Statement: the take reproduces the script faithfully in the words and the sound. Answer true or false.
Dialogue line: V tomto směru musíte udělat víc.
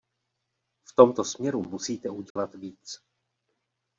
false